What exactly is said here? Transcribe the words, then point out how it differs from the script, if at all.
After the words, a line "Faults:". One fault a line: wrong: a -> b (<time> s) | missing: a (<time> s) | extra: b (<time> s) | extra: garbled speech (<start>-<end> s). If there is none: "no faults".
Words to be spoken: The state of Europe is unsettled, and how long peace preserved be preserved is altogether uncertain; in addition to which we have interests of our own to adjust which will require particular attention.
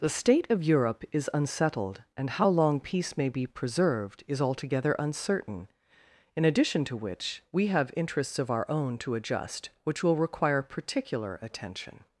The state of Europe is unsettled, and how long peace may be preserved is altogether uncertain; in addition to which we have interests of our own to adjust which will require particular attention.
Faults:
wrong: preserved -> may (3.2 s)